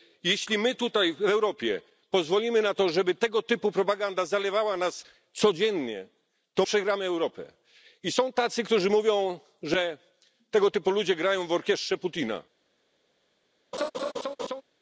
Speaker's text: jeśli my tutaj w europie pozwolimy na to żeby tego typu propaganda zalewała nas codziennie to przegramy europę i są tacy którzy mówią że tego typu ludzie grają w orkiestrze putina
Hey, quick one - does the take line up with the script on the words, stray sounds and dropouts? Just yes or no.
no